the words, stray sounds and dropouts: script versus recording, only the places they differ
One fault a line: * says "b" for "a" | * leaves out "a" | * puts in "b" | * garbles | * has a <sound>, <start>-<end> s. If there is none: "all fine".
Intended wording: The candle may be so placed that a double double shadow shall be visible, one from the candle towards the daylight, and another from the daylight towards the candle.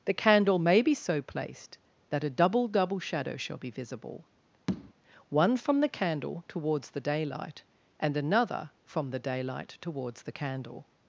* has a tap, 4.7-4.9 s